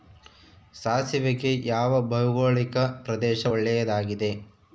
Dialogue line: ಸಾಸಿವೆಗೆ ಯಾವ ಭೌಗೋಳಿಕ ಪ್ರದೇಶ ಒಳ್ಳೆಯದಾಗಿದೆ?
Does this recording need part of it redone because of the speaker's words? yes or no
no